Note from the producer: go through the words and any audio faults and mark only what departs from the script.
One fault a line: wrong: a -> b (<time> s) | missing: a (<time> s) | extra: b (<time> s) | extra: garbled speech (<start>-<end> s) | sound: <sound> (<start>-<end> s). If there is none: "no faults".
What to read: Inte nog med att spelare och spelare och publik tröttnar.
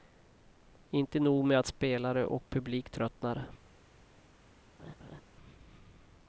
missing: spelare och (2.5 s)
sound: laugh (4.8-5.2 s)